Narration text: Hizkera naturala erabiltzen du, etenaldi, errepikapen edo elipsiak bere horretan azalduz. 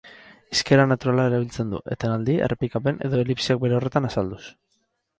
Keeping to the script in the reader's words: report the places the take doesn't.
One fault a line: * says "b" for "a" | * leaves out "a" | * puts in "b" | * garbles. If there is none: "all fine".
all fine